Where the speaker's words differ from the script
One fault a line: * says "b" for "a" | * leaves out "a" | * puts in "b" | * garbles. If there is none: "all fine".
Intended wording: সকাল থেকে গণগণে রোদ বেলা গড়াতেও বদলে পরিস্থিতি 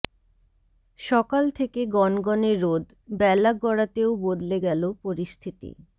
* puts in "গেল"